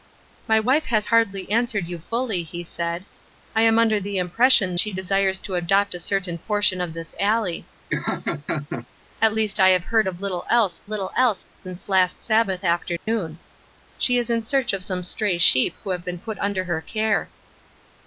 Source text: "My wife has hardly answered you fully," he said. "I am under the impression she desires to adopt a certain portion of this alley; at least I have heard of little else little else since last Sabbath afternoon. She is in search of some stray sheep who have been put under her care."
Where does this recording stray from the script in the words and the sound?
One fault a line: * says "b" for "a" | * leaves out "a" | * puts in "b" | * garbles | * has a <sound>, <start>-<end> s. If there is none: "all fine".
* has a laugh, 7.9-8.9 s
* has a dropout, 13.0-13.1 s